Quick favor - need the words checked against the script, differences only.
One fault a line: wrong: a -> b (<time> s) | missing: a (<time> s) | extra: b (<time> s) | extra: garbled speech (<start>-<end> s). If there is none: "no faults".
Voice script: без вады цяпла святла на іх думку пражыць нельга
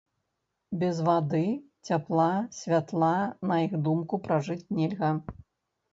no faults